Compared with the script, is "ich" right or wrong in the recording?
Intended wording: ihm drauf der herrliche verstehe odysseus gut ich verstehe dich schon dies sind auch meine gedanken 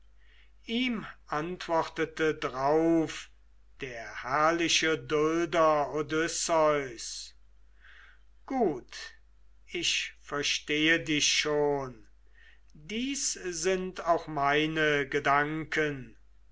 right